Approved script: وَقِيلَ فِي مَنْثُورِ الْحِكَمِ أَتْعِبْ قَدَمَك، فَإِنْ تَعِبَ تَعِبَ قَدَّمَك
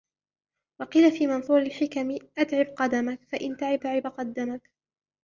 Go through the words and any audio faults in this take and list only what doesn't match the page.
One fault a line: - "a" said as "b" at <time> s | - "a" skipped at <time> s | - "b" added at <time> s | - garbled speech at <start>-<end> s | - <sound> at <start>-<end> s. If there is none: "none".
none